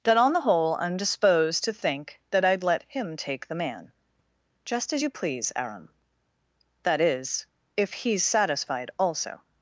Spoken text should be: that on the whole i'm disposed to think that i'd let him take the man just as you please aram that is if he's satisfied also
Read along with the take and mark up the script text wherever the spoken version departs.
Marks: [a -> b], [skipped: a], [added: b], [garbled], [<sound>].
that on the whole i'm disposed to think that i'd let him take the man just as you please aram that is if he's satisfied also